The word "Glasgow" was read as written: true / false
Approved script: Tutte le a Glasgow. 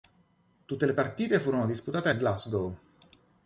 true